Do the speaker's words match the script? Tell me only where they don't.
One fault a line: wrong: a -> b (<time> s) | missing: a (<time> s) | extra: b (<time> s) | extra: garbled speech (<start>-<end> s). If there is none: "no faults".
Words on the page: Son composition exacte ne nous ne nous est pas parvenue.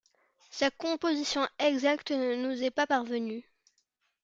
wrong: Son -> Sa (0.5 s)
missing: ne nous (2.6 s)